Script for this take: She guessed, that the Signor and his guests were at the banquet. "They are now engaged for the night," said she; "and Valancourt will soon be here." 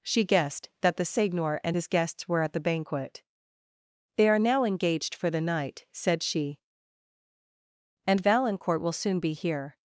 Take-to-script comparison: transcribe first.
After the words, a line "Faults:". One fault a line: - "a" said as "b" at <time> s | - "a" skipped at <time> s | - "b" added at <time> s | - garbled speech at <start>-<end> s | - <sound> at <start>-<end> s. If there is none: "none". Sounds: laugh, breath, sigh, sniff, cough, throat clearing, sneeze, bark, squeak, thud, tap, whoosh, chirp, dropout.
She guessed, that the Signor and his guests were at the banquet. "They are now engaged for the night," said she; "and Valancourt will soon be here."
Faults:
none